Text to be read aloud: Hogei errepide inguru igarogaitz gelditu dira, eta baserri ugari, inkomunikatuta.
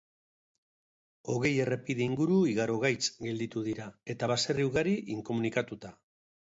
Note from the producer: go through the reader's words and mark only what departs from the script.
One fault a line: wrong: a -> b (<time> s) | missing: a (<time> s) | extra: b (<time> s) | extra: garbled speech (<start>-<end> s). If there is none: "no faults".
no faults